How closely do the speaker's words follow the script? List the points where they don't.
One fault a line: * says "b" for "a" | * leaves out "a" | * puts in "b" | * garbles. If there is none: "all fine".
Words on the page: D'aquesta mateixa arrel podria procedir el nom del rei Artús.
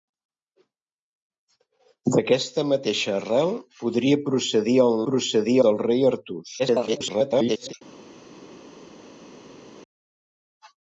* says "procedir" for "nom"
* garbles